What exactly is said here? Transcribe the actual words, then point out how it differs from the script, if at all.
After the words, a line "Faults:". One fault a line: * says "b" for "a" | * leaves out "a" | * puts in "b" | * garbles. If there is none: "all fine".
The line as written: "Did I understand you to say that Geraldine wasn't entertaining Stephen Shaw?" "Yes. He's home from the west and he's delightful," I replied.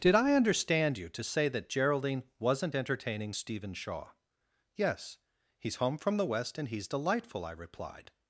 "Did I understand you to say that Geraldine wasn't entertaining Stephen Shaw?" "Yes. He's home from the west and he's delightful," I replied.
Faults:
all fine